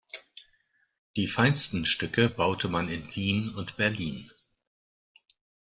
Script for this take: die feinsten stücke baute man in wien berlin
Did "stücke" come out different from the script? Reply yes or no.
no